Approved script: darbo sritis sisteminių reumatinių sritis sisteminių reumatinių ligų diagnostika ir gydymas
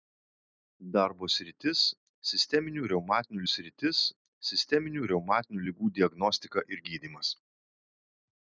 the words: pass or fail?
pass